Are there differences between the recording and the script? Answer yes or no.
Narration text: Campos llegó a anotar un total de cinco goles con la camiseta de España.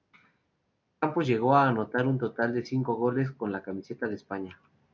no